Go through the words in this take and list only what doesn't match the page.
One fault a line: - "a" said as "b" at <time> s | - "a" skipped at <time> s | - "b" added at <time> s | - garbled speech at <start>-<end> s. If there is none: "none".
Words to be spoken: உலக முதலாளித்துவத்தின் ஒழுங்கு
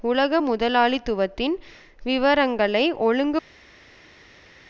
- "விவரங்களை" added at 2.0 s